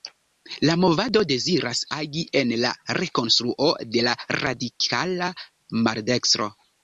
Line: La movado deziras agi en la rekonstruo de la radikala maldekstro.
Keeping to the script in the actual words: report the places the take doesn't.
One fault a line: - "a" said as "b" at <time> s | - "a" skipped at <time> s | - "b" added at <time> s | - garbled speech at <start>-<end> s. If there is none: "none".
none